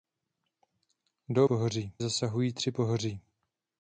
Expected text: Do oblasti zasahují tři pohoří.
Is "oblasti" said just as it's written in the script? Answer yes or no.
no